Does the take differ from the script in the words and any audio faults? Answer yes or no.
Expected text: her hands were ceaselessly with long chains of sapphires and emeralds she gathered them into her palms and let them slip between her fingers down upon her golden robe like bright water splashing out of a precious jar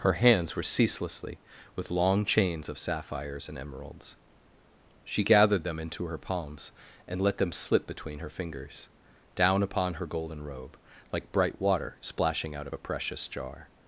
no